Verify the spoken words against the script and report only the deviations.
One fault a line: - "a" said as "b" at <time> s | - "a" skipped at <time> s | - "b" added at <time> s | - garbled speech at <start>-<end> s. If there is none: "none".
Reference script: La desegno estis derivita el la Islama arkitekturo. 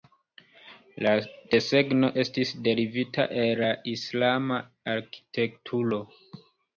none